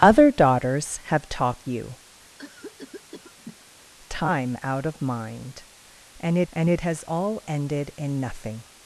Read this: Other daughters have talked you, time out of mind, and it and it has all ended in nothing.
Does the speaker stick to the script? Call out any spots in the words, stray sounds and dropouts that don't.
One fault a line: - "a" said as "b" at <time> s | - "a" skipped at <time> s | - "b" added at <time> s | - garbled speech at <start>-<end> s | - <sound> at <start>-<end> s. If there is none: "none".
- cough at 2.4-3.7 s